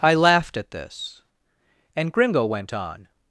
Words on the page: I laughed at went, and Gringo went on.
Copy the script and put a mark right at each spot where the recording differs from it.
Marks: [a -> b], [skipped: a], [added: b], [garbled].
I laughed at [went, -> this] and Gringo went on.